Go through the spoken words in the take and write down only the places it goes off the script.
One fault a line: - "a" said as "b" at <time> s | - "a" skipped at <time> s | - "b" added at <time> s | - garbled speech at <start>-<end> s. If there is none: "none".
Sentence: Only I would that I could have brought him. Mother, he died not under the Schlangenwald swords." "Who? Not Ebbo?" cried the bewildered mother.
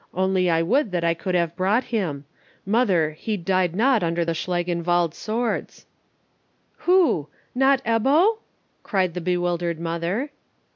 none